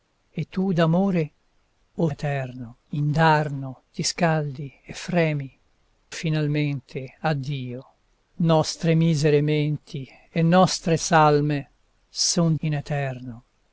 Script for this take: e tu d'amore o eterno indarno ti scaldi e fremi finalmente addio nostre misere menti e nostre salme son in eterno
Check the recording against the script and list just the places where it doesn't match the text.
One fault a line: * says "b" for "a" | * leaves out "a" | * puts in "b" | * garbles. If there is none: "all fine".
all fine